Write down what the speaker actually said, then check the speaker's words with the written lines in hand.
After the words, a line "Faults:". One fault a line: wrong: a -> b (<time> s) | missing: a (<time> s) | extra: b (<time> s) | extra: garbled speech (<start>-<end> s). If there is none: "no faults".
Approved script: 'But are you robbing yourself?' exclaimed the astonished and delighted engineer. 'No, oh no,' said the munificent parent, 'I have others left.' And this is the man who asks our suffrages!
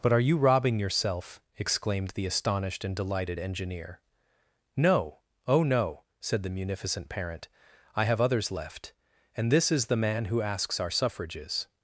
'But are you robbing yourself?' exclaimed the astonished and delighted engineer. 'No, oh no,' said the munificent parent, 'I have others left.' And this is the man who asks our suffrages!
Faults:
no faults